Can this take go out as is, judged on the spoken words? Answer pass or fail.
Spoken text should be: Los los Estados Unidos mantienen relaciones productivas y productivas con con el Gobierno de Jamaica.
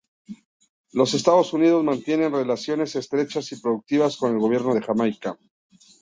fail